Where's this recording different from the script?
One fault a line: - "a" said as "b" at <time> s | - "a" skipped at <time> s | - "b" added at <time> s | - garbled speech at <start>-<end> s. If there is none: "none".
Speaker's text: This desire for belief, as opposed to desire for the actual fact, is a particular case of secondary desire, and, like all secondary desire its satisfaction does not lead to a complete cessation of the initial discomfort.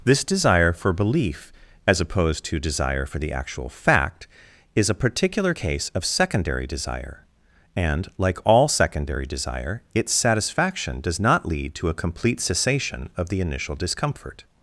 none